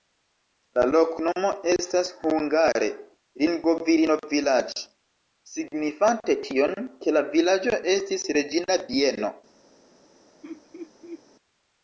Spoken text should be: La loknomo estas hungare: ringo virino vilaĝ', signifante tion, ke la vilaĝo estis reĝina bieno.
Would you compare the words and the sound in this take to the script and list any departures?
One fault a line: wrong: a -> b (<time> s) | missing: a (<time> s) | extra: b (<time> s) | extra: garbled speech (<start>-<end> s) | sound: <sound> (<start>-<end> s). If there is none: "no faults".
sound: laugh (10.4-11.2 s)